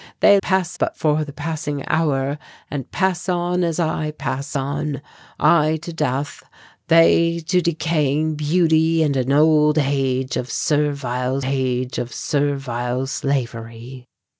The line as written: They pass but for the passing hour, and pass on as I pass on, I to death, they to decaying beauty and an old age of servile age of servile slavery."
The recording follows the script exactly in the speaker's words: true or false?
true